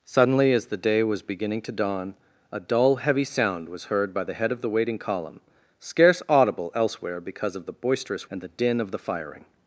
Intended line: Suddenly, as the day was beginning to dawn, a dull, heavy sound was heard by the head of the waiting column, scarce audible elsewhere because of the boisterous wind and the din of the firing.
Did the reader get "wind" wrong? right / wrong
wrong